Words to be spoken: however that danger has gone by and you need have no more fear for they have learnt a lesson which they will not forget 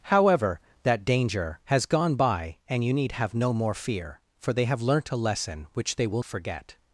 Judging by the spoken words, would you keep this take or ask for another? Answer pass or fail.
fail